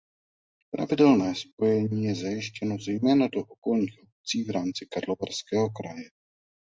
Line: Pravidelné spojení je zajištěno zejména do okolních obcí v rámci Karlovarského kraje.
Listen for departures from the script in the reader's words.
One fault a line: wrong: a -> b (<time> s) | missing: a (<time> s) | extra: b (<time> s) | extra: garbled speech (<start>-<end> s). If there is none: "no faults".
no faults